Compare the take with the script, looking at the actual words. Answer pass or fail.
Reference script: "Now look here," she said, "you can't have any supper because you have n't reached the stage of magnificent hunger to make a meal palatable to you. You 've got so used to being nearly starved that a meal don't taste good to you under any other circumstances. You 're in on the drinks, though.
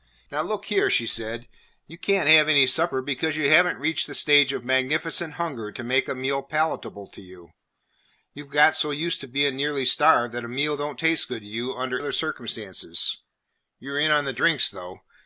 fail